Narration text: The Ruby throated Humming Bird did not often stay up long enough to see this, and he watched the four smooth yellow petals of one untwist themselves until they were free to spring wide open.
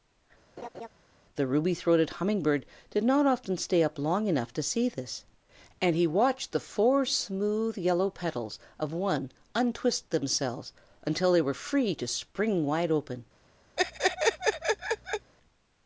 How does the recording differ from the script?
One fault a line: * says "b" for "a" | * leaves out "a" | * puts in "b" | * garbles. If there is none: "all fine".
all fine